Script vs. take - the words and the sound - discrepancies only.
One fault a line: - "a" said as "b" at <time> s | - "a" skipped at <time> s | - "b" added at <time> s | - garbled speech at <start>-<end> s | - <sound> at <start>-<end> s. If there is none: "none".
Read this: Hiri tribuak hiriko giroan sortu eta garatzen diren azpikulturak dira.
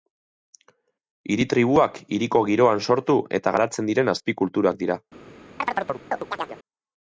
- chirp at 5.6-6.6 s